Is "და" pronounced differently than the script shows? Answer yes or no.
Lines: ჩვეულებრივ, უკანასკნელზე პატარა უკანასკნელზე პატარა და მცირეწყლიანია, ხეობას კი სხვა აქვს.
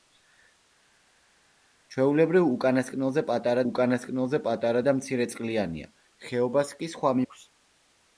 no